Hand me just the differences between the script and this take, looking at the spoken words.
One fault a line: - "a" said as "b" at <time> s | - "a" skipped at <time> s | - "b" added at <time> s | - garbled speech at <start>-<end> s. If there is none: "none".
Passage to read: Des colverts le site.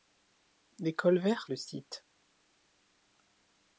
none